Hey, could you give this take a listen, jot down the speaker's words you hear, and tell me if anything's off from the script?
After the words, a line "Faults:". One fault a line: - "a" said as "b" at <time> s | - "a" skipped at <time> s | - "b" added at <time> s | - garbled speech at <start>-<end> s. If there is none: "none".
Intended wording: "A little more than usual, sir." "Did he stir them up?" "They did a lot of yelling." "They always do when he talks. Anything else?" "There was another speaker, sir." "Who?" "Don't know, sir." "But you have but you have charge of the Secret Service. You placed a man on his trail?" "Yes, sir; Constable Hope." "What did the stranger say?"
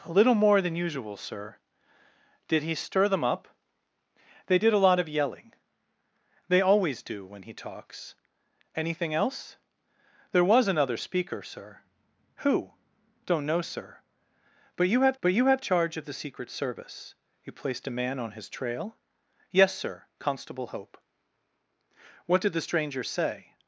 "A little more than usual, sir." "Did he stir them up?" "They did a lot of yelling." "They always do when he talks. Anything else?" "There was another speaker, sir." "Who?" "Don't know, sir." "But you have but you have charge of the Secret Service. You placed a man on his trail?" "Yes, sir; Constable Hope." "What did the stranger say?"
Faults:
none